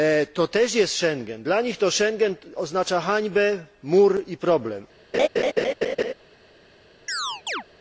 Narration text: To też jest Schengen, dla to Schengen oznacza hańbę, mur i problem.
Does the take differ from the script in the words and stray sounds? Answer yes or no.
yes